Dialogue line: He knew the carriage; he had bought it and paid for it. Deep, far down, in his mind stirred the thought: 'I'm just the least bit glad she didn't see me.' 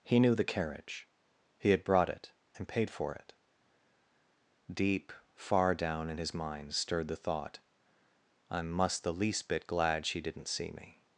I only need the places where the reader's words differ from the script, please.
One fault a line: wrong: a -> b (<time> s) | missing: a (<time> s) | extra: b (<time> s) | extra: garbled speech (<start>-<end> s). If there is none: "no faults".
wrong: bought -> brought (1.8 s)
wrong: just -> must (8.7 s)